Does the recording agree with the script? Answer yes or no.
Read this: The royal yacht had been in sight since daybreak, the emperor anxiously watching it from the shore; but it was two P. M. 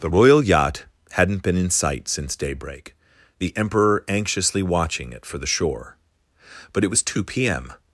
no